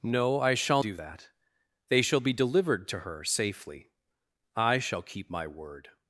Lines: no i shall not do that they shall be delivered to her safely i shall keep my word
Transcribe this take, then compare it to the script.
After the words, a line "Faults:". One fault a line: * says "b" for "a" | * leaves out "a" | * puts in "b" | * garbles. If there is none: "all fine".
no i shall do that they shall be delivered to her safely i shall keep my word
Faults:
* leaves out "not"